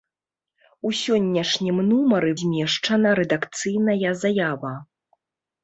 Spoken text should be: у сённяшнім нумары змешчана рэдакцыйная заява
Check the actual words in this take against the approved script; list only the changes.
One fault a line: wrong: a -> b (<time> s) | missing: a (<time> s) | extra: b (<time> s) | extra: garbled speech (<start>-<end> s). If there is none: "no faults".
no faults